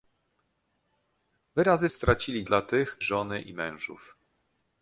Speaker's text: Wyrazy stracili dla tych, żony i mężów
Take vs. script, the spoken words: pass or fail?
pass